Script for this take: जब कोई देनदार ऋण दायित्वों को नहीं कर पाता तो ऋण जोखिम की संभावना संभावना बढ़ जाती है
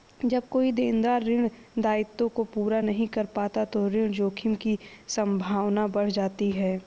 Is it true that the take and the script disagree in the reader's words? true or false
true